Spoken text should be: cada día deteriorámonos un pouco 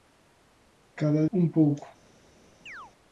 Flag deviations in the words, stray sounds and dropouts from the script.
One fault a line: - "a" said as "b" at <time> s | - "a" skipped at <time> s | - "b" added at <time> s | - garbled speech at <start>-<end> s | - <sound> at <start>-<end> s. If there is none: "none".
- "día deteriorámonos" skipped at 1.2 s
- chirp at 2.7-2.9 s